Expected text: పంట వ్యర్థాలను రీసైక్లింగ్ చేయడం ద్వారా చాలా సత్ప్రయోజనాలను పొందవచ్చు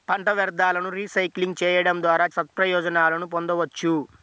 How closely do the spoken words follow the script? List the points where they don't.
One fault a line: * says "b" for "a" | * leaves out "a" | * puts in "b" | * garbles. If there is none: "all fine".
* leaves out "చాలా"